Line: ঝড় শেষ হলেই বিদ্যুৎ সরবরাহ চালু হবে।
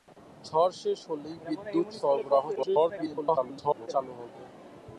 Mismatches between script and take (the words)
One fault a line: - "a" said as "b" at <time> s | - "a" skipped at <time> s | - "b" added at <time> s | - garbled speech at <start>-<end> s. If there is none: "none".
- garbled speech at 2.6-3.9 s